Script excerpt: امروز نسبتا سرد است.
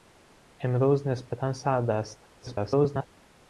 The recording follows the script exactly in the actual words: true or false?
false